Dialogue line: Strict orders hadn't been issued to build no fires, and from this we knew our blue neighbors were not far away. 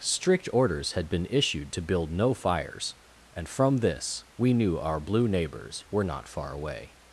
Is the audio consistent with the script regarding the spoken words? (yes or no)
no